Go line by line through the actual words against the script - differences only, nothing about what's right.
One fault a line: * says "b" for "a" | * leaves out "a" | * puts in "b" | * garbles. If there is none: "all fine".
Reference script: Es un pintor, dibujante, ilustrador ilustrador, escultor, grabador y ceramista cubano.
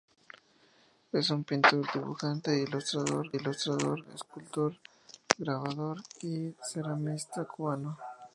all fine